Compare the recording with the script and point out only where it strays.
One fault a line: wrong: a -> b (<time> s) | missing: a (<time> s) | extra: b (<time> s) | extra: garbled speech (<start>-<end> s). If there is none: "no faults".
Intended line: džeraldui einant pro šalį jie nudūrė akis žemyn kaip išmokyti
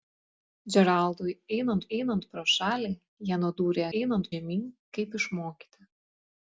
extra: einant (2.0 s)
wrong: akis -> einant (4.0 s)